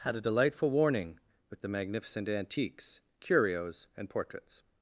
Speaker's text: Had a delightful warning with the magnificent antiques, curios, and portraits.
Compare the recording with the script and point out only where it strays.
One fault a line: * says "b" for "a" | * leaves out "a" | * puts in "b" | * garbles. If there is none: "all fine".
all fine